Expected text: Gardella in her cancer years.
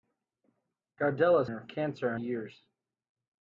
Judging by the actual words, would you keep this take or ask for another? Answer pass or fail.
pass